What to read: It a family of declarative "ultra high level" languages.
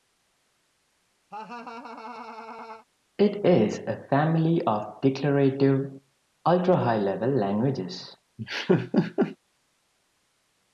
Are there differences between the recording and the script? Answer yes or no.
yes